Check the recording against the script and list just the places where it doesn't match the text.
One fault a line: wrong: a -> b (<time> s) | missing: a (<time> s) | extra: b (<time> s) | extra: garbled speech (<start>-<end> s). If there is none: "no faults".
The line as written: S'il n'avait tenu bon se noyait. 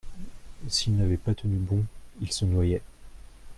extra: pas (1.1 s)
extra: il (2.2 s)